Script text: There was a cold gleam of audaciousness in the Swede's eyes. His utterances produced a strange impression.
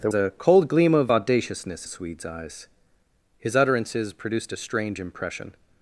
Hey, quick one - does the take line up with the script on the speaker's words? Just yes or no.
no